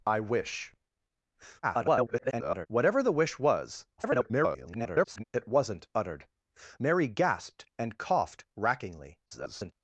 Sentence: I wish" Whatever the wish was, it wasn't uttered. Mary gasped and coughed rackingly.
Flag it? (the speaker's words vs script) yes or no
yes